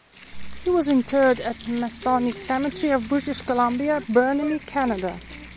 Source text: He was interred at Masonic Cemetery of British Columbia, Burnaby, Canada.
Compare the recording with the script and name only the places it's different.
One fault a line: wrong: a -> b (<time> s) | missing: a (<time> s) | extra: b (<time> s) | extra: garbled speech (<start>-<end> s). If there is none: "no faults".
no faults